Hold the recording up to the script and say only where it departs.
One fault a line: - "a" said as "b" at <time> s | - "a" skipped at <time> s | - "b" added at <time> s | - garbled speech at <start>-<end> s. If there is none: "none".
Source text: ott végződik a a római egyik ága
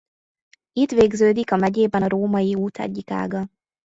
- "ott" said as "itt" at 0.7 s
- "megyében" added at 1.6 s
- "út" added at 2.5 s